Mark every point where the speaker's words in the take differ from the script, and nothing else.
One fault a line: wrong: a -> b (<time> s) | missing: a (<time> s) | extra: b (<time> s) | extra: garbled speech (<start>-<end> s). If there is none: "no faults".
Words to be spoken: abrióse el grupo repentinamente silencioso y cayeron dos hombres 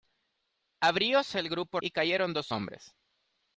missing: repentinamente silencioso (1.8 s)